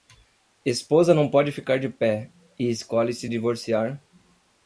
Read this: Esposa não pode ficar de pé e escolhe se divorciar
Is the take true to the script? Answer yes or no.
yes